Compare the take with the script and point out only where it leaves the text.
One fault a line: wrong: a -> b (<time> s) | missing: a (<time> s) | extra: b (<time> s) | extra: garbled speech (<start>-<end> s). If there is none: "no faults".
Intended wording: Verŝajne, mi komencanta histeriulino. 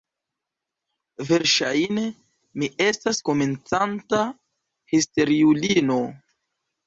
extra: estas (2.9 s)